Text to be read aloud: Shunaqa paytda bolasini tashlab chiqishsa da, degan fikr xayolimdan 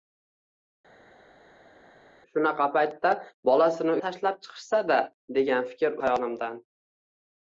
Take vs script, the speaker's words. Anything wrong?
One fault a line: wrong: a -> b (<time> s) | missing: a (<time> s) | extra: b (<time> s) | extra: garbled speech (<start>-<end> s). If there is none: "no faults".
no faults